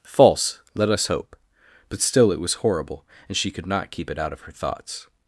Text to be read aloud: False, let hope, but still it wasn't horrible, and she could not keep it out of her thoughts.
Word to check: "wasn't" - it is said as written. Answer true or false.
false